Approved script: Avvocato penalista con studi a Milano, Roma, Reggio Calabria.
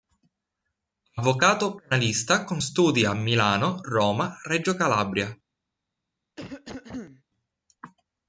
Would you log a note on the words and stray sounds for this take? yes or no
yes